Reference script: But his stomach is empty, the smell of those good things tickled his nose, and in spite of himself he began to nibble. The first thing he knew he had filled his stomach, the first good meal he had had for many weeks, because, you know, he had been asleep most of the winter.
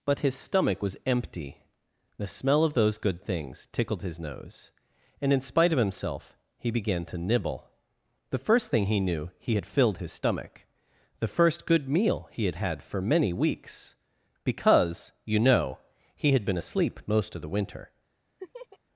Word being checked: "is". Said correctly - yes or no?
no